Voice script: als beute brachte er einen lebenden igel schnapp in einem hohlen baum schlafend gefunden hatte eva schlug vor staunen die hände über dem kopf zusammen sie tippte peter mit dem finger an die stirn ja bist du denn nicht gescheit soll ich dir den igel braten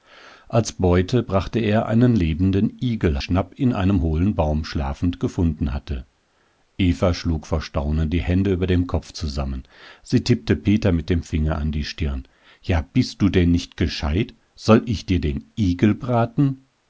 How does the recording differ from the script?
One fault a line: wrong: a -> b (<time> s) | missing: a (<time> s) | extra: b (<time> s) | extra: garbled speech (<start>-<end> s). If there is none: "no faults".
no faults